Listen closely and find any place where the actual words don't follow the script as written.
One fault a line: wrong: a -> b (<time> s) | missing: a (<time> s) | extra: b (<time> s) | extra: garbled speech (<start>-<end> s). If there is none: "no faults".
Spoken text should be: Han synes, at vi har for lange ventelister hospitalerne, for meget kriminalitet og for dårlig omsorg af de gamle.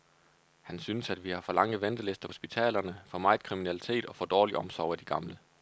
no faults